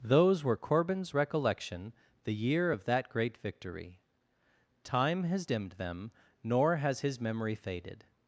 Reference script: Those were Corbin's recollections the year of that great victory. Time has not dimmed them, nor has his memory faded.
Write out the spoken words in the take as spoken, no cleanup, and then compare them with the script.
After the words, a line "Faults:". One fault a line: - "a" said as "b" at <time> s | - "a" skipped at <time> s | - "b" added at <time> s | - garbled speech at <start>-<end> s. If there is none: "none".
Those were Corbin's recollection the year of that great victory. Time has dimmed them, nor has his memory faded.
Faults:
- "recollections" said as "recollection" at 1.1 s
- "not" skipped at 5.5 s